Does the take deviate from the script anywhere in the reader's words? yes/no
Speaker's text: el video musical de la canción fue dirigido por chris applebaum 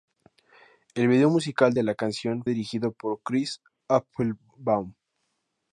yes